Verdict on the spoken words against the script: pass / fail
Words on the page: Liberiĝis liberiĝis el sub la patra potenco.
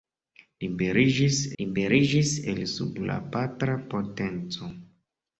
pass